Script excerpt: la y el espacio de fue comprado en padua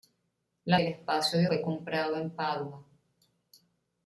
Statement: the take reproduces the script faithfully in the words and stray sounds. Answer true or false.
true